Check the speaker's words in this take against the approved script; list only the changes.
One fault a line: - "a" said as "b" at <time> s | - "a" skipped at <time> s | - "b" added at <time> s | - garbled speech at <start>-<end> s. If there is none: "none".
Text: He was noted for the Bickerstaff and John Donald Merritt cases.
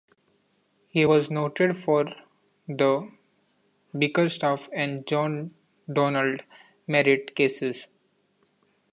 none